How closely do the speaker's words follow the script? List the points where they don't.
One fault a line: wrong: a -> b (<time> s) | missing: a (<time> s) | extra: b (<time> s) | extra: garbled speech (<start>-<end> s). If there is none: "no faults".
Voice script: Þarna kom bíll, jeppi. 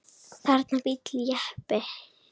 missing: kom (0.8 s)